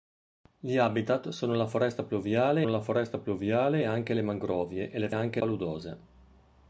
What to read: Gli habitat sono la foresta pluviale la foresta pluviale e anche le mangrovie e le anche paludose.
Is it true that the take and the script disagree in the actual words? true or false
false